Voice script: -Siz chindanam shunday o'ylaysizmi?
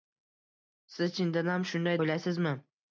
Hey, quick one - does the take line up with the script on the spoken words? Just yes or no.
yes